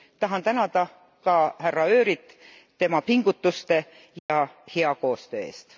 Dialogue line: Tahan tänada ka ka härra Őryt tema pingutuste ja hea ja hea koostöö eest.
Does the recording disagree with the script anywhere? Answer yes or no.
yes